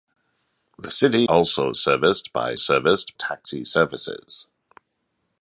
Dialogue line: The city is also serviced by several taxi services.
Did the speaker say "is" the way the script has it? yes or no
no